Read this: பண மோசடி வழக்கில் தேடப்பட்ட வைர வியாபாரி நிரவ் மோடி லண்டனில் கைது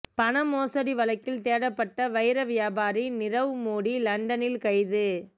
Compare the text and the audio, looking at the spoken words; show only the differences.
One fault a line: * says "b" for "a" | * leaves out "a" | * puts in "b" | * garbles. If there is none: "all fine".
all fine